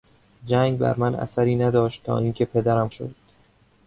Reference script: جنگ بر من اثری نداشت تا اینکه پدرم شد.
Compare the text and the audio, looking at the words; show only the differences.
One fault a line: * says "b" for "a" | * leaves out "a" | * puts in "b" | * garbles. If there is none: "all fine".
all fine